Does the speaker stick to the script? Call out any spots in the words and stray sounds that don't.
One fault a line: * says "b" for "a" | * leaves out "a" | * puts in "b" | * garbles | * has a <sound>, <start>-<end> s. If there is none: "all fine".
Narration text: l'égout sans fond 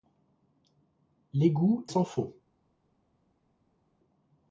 all fine